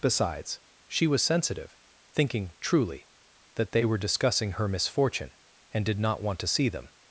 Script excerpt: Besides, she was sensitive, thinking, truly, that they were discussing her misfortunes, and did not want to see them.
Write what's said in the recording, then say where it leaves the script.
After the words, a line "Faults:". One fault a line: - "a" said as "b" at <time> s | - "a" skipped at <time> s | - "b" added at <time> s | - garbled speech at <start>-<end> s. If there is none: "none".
Besides, she was sensitive, thinking, truly, that they were discussing her misfortune, and did not want to see them.
Faults:
- "misfortunes" said as "misfortune" at 4.7 s